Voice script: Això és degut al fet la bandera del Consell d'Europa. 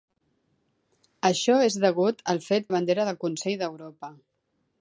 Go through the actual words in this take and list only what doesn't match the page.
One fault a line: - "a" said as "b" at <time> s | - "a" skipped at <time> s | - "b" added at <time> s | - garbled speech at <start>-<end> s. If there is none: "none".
none